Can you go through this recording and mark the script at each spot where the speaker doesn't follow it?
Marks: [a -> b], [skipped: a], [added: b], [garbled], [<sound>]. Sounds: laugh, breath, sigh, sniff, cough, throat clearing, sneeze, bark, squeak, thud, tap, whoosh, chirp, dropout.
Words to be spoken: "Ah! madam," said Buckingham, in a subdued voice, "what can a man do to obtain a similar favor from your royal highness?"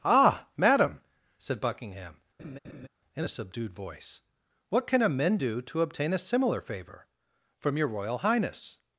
"Ah! madam," said Buckingham, [laugh] in a subdued voice, "what can a [man -> men] do to obtain a similar favor from your royal highness?"